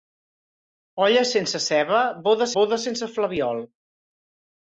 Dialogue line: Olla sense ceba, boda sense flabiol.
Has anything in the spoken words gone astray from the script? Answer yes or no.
yes